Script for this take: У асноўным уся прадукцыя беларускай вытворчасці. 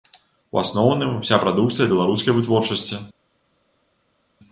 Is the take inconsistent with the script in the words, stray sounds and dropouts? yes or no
no